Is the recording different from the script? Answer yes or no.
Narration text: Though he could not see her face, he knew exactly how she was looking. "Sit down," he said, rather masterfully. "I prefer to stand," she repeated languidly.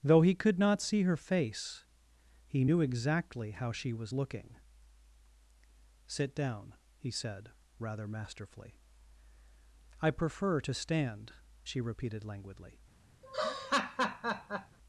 no